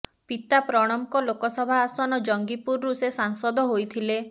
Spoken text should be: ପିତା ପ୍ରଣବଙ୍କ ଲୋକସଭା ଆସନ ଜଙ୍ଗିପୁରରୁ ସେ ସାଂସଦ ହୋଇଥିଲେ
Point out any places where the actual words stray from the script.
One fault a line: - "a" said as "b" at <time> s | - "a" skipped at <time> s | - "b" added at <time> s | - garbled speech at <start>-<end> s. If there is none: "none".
none